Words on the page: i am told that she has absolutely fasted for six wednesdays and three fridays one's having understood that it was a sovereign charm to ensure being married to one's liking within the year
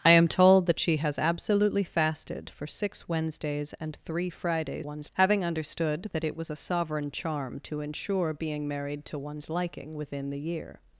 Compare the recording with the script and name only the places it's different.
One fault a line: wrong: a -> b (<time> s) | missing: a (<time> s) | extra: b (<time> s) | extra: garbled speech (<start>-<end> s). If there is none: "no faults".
no faults